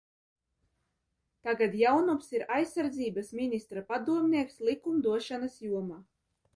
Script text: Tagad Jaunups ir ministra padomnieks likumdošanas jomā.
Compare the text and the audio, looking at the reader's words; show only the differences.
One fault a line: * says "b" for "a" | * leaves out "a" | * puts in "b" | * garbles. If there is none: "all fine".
* puts in "aizsardzības"